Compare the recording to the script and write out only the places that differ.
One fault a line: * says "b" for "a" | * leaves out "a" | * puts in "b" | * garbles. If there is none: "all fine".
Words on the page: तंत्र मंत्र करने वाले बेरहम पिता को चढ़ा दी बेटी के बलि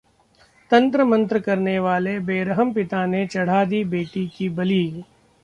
* says "ने" for "को"
* says "की" for "के"